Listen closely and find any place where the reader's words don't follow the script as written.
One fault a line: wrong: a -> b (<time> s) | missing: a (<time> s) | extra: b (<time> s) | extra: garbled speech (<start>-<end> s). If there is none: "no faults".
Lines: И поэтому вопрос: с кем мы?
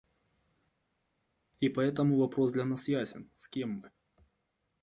extra: для нас ясен (2.5 s)